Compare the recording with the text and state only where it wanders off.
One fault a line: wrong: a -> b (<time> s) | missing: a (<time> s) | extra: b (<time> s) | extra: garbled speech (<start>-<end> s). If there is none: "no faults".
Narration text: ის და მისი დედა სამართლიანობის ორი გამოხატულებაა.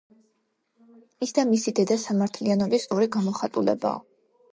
no faults